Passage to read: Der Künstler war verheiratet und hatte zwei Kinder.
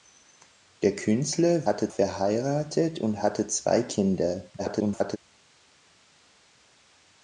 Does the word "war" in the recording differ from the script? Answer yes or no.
yes